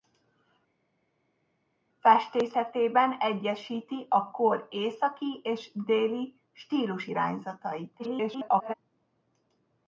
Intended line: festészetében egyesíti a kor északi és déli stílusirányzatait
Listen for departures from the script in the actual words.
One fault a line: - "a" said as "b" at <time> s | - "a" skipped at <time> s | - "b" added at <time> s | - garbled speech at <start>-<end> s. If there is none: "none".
- garbled speech at 8.0-8.7 s